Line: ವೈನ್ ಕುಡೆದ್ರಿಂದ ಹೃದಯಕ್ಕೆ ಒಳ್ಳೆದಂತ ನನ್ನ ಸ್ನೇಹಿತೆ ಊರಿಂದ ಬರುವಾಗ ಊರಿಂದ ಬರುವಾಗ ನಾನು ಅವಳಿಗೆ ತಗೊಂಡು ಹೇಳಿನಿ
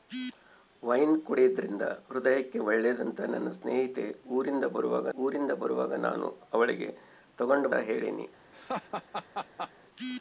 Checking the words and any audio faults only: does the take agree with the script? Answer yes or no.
no